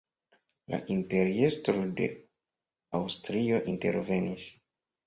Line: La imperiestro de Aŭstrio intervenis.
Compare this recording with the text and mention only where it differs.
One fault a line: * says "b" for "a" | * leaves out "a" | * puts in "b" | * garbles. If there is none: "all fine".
all fine